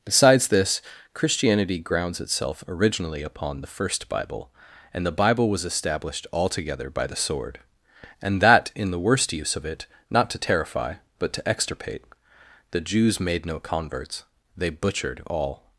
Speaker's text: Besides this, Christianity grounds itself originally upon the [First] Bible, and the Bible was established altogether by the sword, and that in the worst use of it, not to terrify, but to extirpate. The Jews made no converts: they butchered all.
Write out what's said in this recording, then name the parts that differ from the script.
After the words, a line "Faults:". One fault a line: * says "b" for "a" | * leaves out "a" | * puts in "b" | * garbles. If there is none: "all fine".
Besides this, Christianity grounds itself originally upon the [First] Bible, and the Bible was established altogether by the sword, and that in the worst use of it, not to terrify, but to extirpate. The Jews made no converts: they butchered all.
Faults:
all fine